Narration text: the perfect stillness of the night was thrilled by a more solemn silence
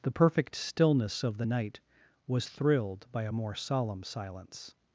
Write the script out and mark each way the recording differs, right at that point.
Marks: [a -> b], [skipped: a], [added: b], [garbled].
the perfect stillness of the night was thrilled by a more solemn silence